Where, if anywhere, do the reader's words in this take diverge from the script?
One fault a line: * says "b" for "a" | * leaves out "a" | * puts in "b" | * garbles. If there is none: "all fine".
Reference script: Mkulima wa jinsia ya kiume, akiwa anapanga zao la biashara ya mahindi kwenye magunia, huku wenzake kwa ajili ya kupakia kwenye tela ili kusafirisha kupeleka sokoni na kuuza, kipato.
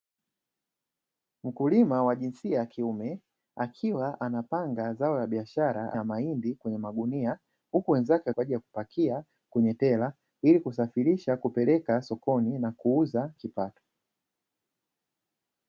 all fine